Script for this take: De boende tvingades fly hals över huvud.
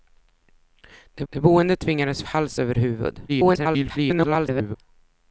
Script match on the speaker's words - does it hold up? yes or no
no